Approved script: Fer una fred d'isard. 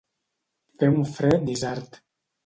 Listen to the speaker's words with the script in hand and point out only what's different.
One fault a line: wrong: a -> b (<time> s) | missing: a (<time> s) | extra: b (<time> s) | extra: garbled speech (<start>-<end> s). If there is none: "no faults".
wrong: una -> un (0.9 s)